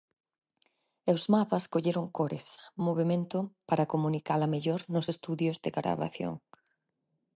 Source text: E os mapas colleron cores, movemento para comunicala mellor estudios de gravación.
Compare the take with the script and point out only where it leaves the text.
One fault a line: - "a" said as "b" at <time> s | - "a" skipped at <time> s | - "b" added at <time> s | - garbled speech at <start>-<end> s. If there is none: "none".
- "nos" added at 4.9 s